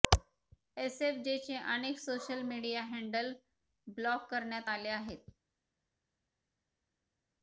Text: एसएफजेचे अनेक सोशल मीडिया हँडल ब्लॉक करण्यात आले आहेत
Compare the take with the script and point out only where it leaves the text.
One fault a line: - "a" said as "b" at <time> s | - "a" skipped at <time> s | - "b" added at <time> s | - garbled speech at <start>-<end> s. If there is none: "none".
none